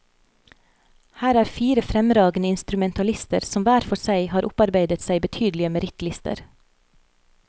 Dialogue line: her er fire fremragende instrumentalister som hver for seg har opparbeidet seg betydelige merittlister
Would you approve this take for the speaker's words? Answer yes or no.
yes